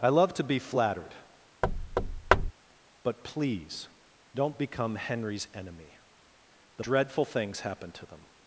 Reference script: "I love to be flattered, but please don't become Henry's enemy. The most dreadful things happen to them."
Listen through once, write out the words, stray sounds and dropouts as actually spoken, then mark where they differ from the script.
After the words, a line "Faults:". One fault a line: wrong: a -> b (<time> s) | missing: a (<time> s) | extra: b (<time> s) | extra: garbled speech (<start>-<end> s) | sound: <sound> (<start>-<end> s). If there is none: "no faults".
"I love to be flattered, but please don't become Henry's enemy. The dreadful things happen to them."
Faults:
sound: thud (1.6-2.5 s)
missing: most (6.8 s)